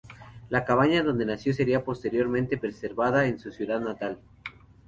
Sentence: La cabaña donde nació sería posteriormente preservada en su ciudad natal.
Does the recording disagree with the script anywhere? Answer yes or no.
no